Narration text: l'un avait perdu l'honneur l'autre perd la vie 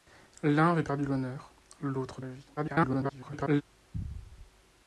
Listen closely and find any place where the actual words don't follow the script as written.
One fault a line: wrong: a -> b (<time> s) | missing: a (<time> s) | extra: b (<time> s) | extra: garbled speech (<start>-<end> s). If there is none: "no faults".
missing: perd (2.2 s)
extra: garbled speech (2.6-3.6 s)